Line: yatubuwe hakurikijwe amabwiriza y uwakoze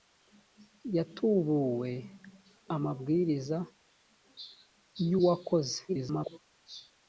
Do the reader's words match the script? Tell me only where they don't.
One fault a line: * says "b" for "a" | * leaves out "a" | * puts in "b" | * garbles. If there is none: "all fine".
* leaves out "hakurikijwe"
* garbles